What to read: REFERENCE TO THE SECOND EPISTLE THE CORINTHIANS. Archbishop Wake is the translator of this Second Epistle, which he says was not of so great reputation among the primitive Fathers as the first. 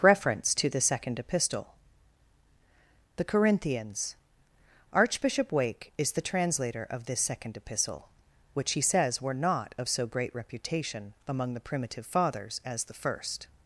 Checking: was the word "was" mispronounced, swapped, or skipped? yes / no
yes